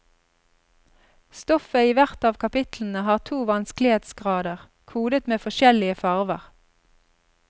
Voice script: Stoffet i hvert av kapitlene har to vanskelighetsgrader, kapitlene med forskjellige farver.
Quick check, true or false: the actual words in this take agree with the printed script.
false